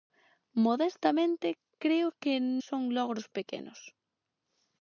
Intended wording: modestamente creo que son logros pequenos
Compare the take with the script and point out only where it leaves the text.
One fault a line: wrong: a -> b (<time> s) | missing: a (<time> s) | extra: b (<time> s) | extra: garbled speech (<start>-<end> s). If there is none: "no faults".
no faults